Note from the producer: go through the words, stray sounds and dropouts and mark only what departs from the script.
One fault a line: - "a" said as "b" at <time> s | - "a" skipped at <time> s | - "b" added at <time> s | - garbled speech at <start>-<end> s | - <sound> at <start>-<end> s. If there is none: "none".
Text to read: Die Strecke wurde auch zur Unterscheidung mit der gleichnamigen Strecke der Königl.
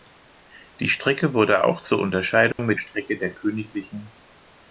- dropout at 2.5-2.6 s
- "der gleichnamigen" skipped at 2.8 s